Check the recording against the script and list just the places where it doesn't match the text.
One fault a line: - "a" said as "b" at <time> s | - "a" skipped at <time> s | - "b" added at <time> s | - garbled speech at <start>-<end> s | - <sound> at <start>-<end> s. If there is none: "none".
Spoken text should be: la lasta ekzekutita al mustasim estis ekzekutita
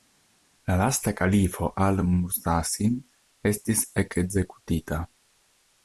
- "ekzekutita" said as "kalifo" at 1.1 s